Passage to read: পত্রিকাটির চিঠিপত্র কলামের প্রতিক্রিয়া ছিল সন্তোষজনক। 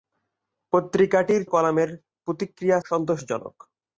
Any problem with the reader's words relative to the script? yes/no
yes